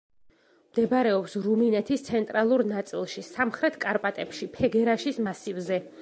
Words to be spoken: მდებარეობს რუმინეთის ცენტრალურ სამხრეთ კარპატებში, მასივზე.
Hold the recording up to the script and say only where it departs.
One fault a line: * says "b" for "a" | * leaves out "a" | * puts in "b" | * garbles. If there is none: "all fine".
* puts in "ნაწილში"
* puts in "ფეგერაშის"